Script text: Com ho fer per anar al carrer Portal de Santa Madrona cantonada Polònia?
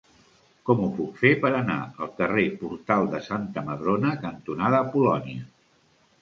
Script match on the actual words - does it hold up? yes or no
no